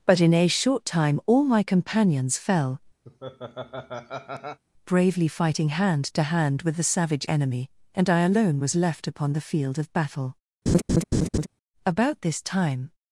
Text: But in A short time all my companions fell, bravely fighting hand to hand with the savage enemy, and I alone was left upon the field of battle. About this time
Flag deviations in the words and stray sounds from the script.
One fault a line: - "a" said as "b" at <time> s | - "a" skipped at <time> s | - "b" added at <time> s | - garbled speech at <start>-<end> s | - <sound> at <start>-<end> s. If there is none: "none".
- laugh at 3.1-4.6 s
- laugh at 10.7-11.5 s